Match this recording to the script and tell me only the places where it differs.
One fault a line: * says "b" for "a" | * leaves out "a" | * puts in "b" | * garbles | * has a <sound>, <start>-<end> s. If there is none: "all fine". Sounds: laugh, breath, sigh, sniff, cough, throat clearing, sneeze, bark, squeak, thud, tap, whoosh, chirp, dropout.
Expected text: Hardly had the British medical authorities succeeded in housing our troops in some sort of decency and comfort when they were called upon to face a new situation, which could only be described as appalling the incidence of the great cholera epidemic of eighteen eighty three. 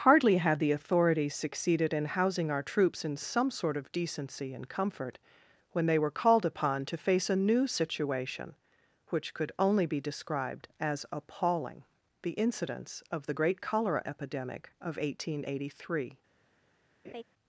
* leaves out "British medical"
* has a laugh, 17.0-17.2 s